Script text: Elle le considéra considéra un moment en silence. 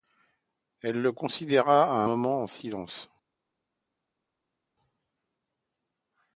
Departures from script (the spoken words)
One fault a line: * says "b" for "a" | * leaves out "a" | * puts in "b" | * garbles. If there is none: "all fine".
* leaves out "considéra"